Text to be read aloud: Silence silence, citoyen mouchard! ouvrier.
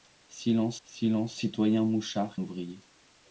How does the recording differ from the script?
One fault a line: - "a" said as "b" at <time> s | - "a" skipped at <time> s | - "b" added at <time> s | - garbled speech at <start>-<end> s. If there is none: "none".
none